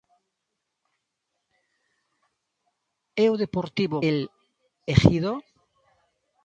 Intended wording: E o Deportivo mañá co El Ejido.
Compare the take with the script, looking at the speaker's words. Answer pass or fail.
fail